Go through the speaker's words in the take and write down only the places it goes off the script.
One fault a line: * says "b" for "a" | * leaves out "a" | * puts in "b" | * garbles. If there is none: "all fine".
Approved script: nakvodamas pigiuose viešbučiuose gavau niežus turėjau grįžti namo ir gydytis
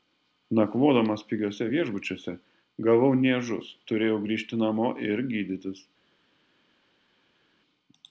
all fine